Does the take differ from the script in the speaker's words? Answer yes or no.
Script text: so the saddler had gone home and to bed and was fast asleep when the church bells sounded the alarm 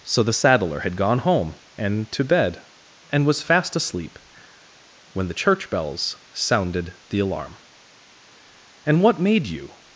yes